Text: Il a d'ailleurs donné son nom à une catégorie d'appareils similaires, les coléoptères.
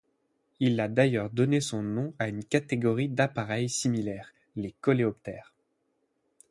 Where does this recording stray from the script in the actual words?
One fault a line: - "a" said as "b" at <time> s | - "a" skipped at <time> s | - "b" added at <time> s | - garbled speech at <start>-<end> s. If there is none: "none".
none